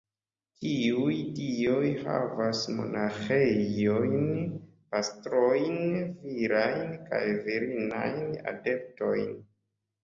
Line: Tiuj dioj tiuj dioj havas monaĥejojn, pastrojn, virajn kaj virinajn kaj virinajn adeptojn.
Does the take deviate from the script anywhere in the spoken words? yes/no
yes